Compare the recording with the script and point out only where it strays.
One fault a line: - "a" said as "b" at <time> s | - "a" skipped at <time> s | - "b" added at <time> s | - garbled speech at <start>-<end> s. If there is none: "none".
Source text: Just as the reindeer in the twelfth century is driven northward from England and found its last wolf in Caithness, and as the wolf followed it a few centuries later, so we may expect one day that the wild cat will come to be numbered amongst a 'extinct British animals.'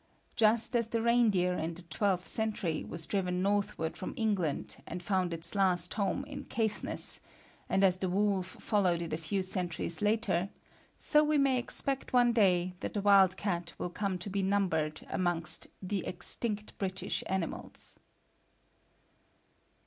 - "is" said as "was" at 2.8 s
- "wolf" said as "home" at 5.9 s
- "a" said as "the" at 15.8 s